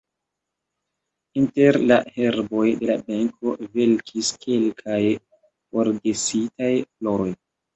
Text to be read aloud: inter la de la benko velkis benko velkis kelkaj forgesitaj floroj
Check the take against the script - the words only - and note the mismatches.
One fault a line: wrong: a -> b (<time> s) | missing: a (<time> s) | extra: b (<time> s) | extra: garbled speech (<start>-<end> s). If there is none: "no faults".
extra: herboj (2.1 s)
missing: benko velkis (4.3 s)